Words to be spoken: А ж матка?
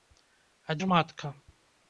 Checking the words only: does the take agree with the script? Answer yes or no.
yes